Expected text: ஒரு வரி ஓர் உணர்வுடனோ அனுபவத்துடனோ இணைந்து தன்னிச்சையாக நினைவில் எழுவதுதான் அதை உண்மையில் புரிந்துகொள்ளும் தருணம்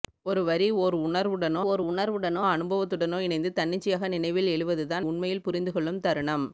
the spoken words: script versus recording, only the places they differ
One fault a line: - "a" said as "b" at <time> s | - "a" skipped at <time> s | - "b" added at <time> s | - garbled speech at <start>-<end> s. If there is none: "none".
- "ஓர் உணர்வுடனோ" added at 1.6 s
- "அதை" skipped at 5.1 s